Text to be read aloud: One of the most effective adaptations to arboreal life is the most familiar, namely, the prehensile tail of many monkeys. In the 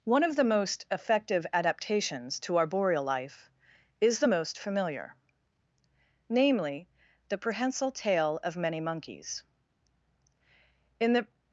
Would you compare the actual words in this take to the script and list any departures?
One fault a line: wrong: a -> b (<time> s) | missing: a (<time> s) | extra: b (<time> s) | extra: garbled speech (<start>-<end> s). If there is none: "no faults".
no faults